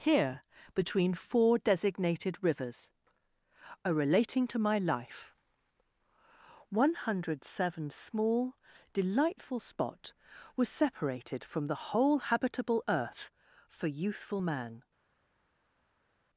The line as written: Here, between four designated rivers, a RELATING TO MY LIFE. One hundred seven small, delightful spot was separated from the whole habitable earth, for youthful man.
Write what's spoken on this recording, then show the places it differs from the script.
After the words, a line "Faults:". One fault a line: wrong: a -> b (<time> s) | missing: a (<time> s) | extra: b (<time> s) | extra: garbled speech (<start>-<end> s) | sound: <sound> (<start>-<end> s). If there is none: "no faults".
Here, between four designated rivers, a RELATING TO MY LIFE. One hundred seven small, delightful spot was separated from the whole habitable earth, for youthful man.
Faults:
no faults